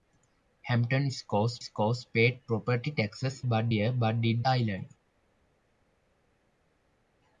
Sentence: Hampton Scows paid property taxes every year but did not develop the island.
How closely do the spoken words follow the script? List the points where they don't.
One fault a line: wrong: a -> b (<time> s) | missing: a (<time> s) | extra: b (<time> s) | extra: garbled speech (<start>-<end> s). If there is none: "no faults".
extra: Scows (1.6 s)
wrong: every -> but (3.4 s)
missing: not develop the (4.5 s)